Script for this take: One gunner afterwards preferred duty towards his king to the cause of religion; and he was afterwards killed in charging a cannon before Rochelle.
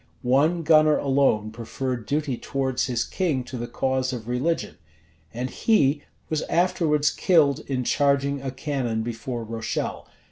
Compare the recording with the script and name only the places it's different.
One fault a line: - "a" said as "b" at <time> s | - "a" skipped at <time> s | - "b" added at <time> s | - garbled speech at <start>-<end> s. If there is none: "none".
- "afterwards" said as "alone" at 1.0 s